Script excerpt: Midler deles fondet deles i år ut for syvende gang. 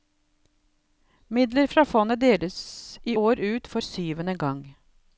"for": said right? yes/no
yes